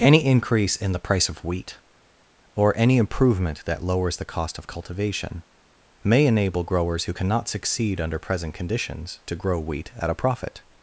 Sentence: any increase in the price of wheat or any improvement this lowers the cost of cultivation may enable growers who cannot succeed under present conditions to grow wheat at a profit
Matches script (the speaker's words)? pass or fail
fail